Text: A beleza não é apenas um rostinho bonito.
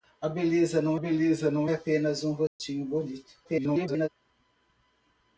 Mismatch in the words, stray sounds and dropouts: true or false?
true